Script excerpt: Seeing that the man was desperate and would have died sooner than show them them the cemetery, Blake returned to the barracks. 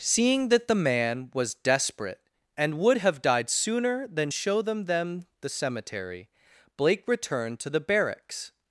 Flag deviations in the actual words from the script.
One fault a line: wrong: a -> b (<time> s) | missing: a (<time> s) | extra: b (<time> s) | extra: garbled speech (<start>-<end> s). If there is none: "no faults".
no faults